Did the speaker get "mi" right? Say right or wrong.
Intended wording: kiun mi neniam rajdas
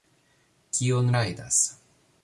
wrong